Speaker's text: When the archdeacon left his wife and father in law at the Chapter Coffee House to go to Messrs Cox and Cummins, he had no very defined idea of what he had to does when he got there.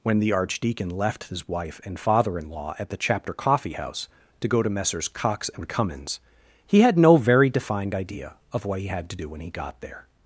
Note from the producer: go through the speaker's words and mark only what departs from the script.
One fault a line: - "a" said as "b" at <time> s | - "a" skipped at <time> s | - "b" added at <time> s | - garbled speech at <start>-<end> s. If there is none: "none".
- "does" said as "do" at 9.1 s